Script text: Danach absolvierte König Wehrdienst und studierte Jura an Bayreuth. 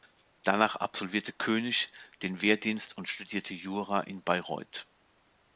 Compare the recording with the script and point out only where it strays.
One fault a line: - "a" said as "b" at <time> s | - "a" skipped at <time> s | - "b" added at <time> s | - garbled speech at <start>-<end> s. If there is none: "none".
- "den" added at 2.2 s
- "an" said as "in" at 4.0 s